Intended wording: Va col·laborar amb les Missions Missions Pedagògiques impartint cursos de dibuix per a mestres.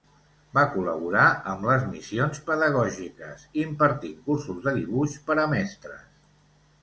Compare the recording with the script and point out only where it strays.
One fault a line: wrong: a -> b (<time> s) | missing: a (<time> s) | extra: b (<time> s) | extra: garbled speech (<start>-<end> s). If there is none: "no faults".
missing: Missions (2.4 s)